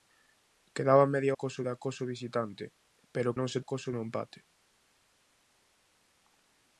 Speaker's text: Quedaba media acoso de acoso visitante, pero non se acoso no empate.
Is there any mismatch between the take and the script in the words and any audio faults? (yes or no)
no